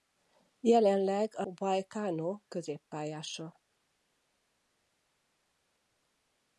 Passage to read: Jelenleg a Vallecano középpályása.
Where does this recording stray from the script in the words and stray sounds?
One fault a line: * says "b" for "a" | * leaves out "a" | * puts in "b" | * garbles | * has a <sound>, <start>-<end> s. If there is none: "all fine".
all fine